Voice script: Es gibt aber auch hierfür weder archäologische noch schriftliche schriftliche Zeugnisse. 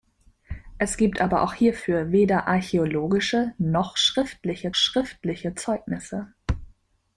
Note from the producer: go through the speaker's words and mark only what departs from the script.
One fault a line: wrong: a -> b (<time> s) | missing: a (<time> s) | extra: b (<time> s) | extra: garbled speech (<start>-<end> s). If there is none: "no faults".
no faults